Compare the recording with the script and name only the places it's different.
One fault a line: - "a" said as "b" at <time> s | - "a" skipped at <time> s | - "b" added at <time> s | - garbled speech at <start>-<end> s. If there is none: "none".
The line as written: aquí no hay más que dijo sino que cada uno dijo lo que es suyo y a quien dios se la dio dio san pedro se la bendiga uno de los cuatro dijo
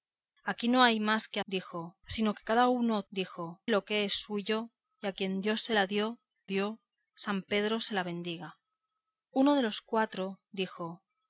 none